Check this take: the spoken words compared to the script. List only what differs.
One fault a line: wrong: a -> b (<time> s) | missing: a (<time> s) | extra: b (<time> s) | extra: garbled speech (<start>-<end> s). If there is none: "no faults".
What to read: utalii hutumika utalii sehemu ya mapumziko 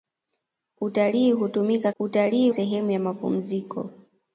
no faults